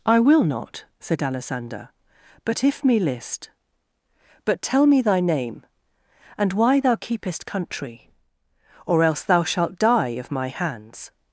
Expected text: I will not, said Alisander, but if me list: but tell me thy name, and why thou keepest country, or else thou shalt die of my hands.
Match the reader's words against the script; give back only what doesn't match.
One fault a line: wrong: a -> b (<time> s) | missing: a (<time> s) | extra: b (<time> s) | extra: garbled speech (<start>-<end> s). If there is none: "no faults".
no faults